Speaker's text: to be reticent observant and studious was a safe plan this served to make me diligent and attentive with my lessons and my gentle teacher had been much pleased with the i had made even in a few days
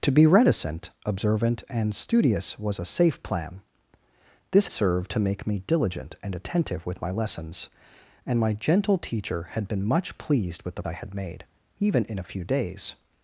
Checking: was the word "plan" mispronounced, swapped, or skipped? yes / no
no